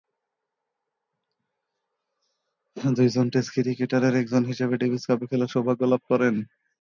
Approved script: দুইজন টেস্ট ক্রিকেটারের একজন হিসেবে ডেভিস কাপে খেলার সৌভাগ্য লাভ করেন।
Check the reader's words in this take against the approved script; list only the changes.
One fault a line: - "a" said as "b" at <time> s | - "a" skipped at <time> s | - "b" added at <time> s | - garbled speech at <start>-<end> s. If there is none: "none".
none